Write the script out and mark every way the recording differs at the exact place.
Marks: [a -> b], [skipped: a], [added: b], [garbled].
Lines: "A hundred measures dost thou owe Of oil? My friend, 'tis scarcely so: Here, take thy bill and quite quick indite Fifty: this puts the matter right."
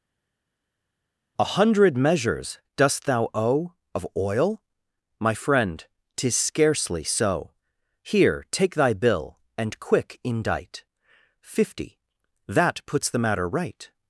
"A hundred measures dost thou owe Of oil? My friend, 'tis scarcely so: Here, take thy bill and [skipped: quite] quick indite Fifty: [this -> that] puts the matter right."